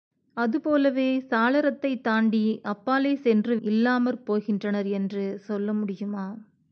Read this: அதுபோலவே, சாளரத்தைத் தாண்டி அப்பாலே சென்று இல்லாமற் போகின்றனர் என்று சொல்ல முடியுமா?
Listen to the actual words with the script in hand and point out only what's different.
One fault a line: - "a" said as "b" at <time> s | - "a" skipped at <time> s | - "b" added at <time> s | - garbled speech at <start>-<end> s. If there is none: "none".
none